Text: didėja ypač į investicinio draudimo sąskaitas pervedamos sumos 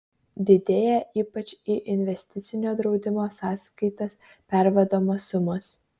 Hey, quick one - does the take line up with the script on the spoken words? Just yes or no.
yes